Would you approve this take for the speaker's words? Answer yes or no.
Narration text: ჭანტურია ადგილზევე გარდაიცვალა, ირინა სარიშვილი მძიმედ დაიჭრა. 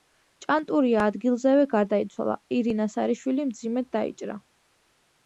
yes